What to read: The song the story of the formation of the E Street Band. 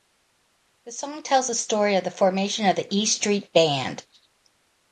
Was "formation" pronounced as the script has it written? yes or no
yes